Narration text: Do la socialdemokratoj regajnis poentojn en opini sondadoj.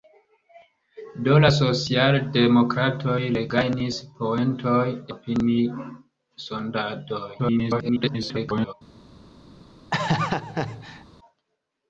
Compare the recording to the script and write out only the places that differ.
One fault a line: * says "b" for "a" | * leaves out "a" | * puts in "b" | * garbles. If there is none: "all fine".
* leaves out "en"
* garbles